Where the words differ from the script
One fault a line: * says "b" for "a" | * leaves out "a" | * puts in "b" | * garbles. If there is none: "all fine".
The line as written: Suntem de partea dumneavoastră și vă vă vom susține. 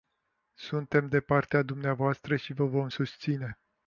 * leaves out "vă"